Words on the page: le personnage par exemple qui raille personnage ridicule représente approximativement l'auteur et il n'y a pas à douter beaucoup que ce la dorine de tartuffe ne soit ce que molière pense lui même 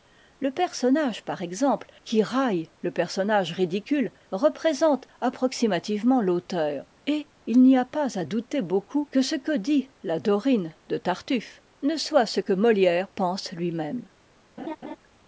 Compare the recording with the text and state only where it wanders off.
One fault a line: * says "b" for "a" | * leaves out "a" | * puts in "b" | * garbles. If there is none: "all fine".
* puts in "le"
* puts in "que dit"